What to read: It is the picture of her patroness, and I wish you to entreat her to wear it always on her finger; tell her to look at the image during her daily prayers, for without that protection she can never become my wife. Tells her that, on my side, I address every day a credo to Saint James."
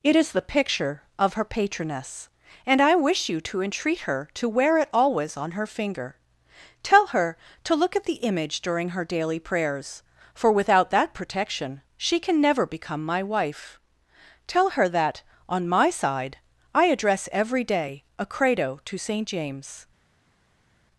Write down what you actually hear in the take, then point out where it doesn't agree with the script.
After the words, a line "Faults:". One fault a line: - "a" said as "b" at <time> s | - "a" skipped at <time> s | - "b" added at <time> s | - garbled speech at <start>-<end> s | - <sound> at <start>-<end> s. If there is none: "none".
It is the picture of her patroness, and I wish you to entreat her to wear it always on her finger; tell her to look at the image during her daily prayers, for without that protection she can never become my wife. Tell her that, on my side, I address every day a credo to Saint James."
Faults:
- "Tells" said as "Tell" at 14.5 s